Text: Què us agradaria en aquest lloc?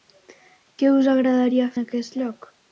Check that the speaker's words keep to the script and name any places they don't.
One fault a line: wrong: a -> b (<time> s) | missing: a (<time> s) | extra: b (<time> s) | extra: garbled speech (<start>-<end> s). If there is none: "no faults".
no faults